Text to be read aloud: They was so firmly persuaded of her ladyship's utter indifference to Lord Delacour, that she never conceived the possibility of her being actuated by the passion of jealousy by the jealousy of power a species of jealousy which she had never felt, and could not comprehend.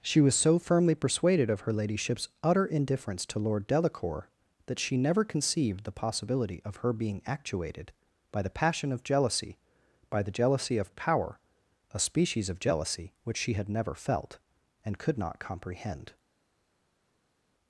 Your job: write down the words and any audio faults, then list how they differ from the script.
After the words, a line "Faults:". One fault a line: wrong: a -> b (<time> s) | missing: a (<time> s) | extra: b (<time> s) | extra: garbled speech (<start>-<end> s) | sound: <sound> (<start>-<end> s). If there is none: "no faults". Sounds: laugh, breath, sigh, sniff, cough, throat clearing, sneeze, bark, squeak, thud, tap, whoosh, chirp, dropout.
She was so firmly persuaded of her ladyship's utter indifference to Lord Delacour, that she never conceived the possibility of her being actuated by the passion of jealousy by the jealousy of power a species of jealousy which she had never felt, and could not comprehend.
Faults:
wrong: They -> She (0.0 s)